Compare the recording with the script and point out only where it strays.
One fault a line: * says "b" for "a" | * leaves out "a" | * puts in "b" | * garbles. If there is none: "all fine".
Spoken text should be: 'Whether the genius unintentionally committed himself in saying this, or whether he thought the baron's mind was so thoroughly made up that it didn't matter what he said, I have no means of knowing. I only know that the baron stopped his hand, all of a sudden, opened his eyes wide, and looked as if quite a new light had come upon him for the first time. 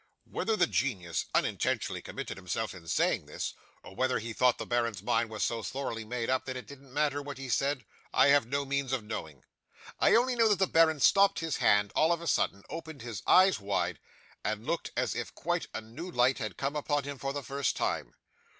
all fine